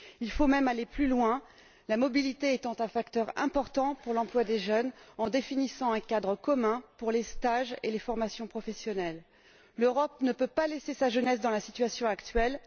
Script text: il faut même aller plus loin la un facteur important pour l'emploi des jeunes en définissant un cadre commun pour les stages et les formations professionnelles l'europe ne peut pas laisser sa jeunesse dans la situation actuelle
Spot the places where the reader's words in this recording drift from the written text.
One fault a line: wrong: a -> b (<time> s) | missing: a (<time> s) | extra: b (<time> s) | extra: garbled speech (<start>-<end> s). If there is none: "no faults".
extra: mobilité étant (2.0 s)